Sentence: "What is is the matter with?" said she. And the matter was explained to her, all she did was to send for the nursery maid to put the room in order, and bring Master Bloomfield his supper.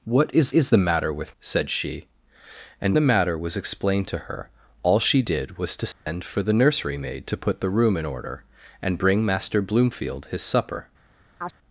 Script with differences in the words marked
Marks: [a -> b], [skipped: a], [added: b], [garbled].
"What is is the matter with?" said she. And the matter was explained to her, all she did was to send for the nursery maid to put the room in order, and bring Master Bloomfield his supper.